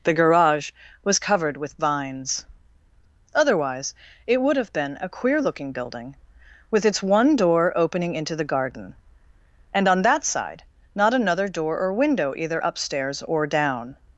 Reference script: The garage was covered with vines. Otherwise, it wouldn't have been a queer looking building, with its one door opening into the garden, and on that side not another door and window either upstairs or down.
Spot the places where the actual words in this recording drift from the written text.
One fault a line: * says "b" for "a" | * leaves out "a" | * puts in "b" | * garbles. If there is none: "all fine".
* says "would" for "wouldn't"
* says "or" for "and"